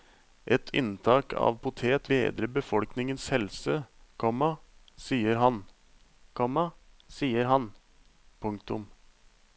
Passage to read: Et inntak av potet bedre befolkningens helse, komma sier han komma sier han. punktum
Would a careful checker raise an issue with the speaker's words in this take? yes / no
no